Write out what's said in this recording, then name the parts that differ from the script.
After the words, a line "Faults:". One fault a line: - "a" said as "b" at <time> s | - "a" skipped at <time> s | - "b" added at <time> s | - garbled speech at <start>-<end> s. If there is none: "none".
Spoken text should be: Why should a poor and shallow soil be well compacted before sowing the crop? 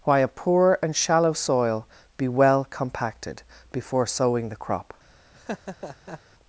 Why a poor and shallow soil be well compacted before sowing the crop?
Faults:
- "should" skipped at 0.2 s